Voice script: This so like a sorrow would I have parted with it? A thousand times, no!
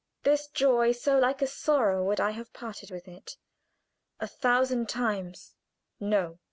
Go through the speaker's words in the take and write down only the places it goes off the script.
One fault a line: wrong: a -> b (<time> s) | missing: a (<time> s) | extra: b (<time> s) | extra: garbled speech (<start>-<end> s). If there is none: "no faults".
extra: joy (0.5 s)